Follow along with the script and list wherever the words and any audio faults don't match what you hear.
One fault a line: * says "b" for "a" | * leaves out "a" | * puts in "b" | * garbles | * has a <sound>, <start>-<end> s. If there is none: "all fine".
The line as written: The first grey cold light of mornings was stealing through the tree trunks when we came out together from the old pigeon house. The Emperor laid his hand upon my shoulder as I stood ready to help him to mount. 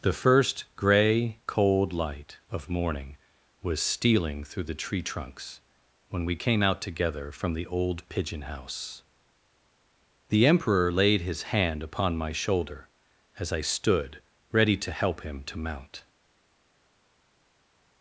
* says "morning" for "mornings"